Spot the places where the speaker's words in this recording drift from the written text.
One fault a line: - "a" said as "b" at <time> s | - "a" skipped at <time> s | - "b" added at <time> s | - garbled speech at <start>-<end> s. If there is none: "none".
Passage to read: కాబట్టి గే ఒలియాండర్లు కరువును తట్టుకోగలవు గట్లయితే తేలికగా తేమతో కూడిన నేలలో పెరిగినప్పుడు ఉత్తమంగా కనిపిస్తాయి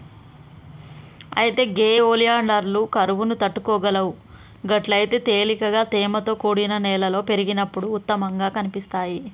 - "కాబట్టి" said as "అయితే" at 1.4 s